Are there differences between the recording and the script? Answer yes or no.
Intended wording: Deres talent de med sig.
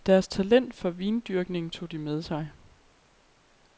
yes